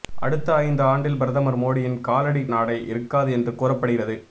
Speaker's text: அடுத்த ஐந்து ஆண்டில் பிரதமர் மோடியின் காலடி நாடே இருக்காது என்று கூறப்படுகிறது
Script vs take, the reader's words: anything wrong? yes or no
no